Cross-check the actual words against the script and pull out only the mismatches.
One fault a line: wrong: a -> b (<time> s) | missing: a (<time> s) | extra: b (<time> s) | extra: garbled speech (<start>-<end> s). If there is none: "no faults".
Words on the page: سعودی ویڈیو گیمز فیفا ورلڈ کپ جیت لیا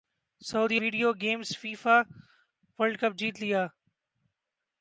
no faults